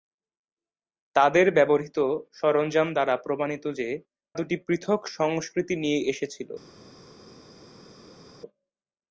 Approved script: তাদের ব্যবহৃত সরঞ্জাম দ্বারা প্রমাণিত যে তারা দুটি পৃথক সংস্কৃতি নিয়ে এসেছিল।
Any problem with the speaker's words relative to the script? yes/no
yes